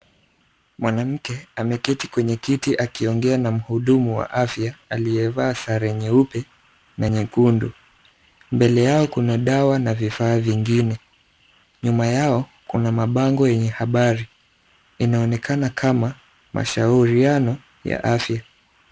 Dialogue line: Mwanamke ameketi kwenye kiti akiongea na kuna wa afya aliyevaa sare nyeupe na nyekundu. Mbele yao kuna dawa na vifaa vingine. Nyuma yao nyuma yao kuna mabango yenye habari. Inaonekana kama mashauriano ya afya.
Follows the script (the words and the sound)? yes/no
no